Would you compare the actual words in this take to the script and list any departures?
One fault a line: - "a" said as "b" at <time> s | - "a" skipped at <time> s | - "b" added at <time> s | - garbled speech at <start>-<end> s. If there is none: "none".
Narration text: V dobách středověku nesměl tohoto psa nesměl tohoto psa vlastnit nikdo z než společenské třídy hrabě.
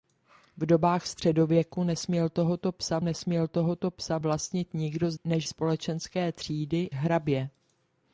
none